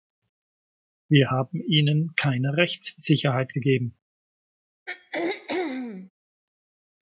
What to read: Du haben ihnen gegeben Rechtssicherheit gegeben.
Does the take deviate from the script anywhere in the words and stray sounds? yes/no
yes